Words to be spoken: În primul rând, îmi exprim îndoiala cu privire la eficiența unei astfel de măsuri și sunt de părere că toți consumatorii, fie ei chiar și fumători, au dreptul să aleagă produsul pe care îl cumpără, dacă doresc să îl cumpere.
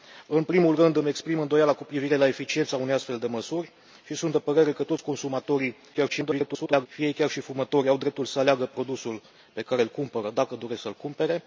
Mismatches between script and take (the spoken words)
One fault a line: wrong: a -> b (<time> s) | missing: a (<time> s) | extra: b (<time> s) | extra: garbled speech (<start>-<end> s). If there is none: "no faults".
extra: garbled speech (5.9-6.9 s)